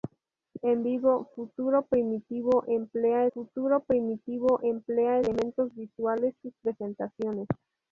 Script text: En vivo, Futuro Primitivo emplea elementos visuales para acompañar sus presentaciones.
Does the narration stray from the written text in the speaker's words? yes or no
yes